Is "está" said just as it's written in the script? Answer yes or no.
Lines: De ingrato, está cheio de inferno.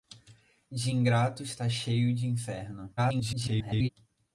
yes